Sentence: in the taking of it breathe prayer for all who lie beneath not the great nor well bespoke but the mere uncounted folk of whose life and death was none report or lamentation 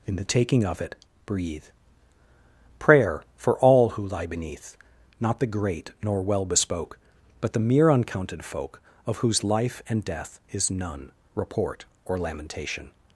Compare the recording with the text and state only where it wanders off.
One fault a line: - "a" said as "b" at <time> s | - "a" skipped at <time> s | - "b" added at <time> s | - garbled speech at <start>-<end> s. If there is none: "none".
- "was" said as "is" at 10.5 s